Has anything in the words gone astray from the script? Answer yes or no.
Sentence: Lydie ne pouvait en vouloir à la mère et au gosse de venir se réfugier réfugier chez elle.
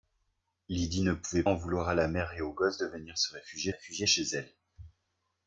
no